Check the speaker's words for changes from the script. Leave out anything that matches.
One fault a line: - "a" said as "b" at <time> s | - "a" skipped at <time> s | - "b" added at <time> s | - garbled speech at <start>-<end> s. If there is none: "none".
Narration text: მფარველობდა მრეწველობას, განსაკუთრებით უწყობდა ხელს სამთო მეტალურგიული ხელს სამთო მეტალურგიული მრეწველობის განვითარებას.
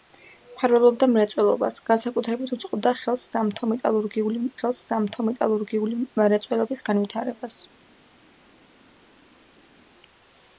none